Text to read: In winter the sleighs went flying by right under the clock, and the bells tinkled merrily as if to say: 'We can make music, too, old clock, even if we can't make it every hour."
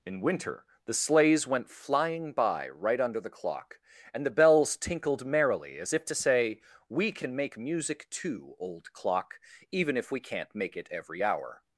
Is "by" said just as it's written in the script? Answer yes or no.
yes